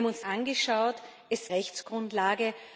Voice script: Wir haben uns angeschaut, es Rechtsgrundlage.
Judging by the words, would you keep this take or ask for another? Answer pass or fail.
pass